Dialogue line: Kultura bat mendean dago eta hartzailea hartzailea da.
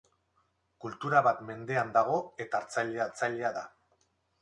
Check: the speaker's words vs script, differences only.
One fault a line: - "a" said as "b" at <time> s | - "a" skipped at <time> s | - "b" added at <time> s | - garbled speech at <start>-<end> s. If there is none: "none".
none